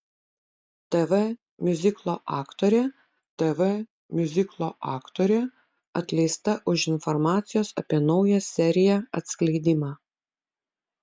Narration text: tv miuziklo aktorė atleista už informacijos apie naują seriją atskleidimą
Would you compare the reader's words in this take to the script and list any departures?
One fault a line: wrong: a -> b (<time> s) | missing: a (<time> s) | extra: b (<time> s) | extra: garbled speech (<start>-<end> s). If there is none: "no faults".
extra: tv miuziklo aktorė (3.4 s)